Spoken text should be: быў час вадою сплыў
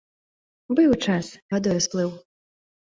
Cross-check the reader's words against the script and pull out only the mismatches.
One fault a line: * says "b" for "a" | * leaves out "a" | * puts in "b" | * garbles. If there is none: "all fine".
all fine